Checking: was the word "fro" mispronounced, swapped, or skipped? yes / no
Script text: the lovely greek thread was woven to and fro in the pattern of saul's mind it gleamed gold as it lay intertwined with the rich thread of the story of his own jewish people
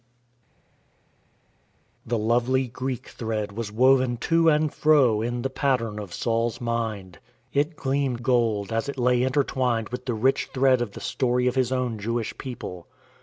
no